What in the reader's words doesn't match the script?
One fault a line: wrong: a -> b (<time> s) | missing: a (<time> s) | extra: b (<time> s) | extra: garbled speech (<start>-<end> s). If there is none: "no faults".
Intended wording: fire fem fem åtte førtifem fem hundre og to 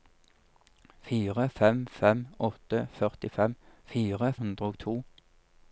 wrong: fem -> fire (3.9 s)